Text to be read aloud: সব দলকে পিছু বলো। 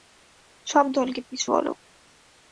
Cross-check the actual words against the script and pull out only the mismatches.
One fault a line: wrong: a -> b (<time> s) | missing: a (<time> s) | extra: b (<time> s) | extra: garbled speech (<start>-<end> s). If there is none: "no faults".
no faults